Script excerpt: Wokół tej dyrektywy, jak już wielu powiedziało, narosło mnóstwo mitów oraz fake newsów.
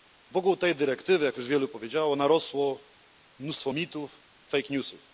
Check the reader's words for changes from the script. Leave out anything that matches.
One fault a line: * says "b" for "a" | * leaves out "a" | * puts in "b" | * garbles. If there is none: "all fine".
* leaves out "oraz"